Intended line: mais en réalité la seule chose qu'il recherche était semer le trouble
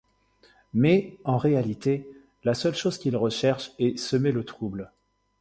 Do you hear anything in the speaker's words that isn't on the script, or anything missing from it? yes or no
yes